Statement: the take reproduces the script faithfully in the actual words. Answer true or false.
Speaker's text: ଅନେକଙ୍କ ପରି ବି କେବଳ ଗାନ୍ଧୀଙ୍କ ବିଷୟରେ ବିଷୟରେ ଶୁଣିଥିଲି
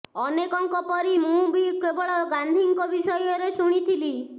false